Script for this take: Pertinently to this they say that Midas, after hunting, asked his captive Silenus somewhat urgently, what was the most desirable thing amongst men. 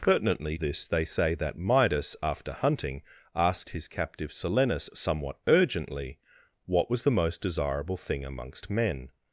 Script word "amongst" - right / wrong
right